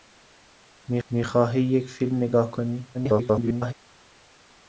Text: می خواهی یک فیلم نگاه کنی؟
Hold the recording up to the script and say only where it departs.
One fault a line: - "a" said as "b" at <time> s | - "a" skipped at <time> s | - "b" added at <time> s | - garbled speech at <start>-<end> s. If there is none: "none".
- "می" added at 1.1 s
- garbled speech at 2.9-3.7 s